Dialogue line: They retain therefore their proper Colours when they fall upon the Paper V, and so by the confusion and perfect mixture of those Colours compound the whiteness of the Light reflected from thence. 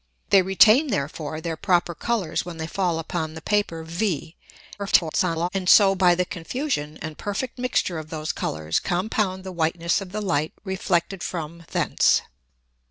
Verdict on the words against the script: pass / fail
fail